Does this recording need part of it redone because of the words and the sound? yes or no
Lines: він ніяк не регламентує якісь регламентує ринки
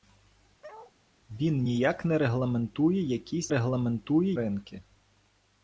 yes